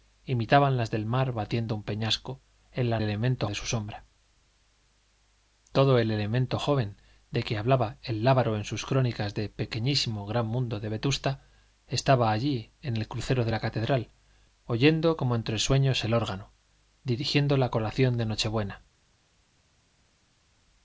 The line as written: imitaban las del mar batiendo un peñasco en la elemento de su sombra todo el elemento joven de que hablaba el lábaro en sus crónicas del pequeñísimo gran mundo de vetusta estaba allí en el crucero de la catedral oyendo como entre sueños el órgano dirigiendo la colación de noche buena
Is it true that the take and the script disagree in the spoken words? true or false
false